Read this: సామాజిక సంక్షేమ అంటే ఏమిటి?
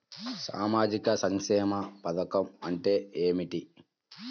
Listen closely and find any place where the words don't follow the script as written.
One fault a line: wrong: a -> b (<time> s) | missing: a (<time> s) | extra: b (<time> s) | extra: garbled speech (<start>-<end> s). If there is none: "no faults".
extra: పథకం (2.0 s)